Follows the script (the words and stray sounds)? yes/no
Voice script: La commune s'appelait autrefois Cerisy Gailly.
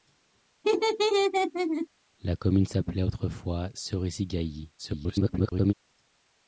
no